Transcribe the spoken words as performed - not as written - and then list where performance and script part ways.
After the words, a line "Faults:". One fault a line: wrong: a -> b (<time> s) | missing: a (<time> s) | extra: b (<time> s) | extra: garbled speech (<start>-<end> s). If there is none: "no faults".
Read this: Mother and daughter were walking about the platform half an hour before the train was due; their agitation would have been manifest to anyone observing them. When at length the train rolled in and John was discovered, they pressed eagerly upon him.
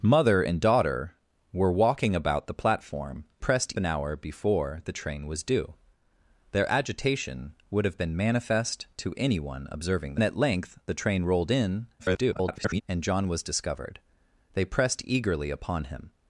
Mother and daughter were walking about the platform pressed an hour before the train was due; their agitation would have been manifest to anyone observing at length the train rolled in [garbled] and John was discovered, they pressed eagerly upon him.
Faults:
wrong: half -> pressed (3.4 s)
missing: them When (10.2 s)
extra: garbled speech (12.0-12.8 s)